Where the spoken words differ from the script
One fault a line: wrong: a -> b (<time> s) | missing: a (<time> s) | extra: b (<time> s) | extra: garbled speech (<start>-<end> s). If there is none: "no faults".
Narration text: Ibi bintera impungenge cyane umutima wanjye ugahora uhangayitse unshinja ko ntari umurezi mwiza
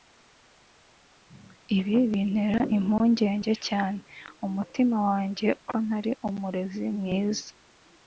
missing: ugahora uhangayitse unshinja (5.5 s)